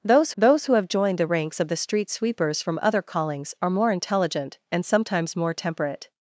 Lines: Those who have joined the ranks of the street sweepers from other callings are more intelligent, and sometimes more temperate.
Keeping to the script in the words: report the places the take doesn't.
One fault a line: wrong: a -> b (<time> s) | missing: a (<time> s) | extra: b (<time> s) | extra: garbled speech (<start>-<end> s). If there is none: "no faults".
extra: those (0.4 s)